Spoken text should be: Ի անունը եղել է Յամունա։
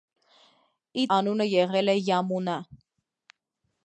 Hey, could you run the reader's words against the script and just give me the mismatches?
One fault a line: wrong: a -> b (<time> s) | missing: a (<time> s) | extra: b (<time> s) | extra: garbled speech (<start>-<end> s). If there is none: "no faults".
no faults